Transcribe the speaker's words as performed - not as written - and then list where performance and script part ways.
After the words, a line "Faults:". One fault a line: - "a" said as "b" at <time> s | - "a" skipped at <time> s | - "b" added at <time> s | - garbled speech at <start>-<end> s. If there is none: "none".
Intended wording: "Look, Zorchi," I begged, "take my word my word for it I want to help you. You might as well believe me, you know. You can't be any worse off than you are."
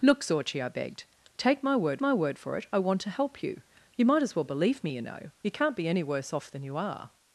"Look, Zorchi," I begged, "take my word my word for it I want to help you. You might as well believe me, you know. You can't be any worse off than you are."
Faults:
none